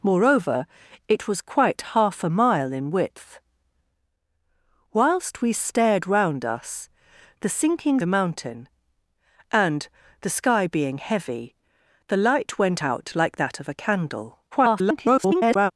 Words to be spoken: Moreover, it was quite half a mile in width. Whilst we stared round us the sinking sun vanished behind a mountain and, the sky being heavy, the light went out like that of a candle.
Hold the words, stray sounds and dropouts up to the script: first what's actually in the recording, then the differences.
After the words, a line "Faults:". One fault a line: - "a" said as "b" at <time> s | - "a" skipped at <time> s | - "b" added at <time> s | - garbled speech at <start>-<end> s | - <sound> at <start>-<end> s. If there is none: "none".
Moreover, it was quite half a mile in width. Whilst we stared round us the sinking a mountain and, the sky being heavy, the light went out like that of a candle. [garbled]
Faults:
- "sun vanished behind" skipped at 8.0 s
- garbled speech at 14.5-15.7 s